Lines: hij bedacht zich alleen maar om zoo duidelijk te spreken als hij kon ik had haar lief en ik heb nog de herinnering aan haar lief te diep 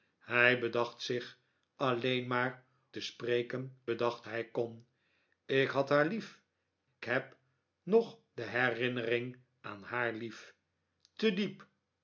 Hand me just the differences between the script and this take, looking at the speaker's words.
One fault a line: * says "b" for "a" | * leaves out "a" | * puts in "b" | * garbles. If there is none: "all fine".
* leaves out "om zoo duidelijk"
* says "bedacht" for "als"
* leaves out "en ik"